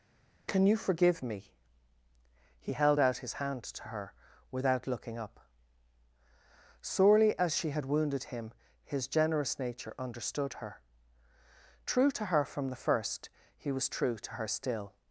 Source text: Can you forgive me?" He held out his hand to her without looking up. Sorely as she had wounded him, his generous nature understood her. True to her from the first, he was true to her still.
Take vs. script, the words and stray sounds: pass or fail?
pass